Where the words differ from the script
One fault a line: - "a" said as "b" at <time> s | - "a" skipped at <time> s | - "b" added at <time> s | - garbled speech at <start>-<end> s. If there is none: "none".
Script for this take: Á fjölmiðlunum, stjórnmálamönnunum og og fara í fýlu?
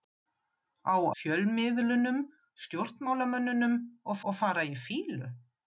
none